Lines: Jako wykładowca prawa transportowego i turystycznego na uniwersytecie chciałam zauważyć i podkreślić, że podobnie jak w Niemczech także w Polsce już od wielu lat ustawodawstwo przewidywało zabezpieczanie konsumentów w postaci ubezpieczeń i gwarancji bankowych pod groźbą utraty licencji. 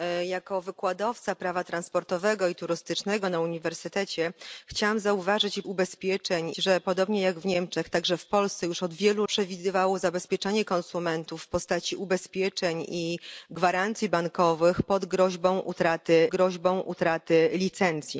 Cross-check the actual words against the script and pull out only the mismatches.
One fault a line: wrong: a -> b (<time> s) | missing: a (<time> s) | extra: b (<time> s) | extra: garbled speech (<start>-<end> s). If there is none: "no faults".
wrong: podkreślić -> ubezpieczeń (5.6 s)
missing: lat ustawodawstwo (9.3 s)
extra: groźbą utraty (16.3 s)